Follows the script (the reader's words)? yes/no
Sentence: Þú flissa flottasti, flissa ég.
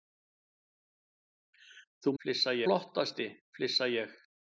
yes